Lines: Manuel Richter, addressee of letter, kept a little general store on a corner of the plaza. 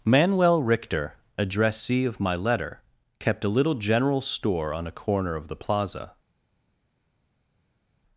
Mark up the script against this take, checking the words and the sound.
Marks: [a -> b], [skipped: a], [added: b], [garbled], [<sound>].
Manuel Richter, addressee of [added: my] letter, kept a little general store on a corner of the plaza.